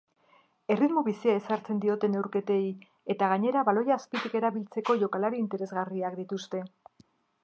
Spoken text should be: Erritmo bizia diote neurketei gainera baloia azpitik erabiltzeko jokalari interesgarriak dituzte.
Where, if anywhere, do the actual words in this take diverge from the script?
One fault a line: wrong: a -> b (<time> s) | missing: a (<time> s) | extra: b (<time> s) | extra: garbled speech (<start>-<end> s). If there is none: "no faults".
extra: ezartzen (1.4 s)
extra: eta (3.1 s)